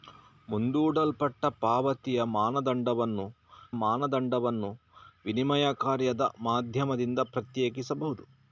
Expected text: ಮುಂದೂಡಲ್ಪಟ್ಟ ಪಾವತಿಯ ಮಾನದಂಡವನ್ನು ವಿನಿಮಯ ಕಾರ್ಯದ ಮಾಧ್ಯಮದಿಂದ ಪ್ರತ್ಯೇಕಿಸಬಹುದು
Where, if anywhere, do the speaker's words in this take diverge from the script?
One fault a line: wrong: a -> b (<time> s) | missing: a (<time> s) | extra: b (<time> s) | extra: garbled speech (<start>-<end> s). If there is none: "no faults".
extra: ಮಾನದಂಡವನ್ನು (3.8 s)